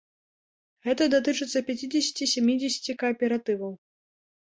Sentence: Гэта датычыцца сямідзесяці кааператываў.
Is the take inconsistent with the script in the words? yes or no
yes